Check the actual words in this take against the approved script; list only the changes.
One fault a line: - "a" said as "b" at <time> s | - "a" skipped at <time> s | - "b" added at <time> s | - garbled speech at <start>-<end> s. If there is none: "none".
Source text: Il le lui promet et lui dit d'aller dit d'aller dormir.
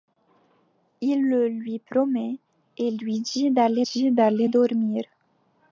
none